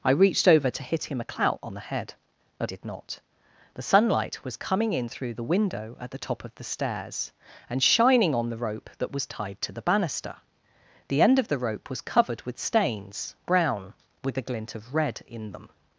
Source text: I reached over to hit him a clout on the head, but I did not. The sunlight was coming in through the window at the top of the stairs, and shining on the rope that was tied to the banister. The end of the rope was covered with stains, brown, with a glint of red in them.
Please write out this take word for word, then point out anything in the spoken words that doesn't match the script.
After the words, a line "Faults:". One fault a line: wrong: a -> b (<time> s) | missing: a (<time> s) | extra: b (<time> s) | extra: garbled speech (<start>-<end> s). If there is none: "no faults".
I reached over to hit him a clout on the head, but did not. The sunlight was coming in through the window at the top of the stairs, and shining on the rope that was tied to the banister. The end of the rope was covered with stains, brown, with a glint of red in them.
Faults:
missing: I (2.7 s)